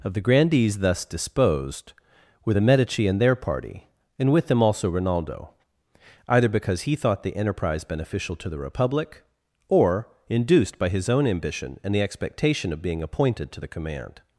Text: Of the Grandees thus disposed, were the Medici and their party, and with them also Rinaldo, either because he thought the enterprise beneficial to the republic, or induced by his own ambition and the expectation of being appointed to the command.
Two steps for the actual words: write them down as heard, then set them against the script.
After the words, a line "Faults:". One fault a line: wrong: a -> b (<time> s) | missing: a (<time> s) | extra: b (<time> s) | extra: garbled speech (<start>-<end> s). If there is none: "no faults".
Of the Grandees thus disposed, were the Medici and their party, and with them also Rinaldo, either because he thought the enterprise beneficial to the republic, or induced by his own ambition and the expectation of being appointed to the command.
Faults:
no faults